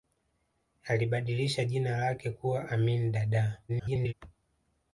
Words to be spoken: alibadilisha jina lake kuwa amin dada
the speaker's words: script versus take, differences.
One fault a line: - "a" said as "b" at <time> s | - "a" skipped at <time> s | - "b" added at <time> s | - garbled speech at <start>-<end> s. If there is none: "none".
- garbled speech at 3.7-4.1 s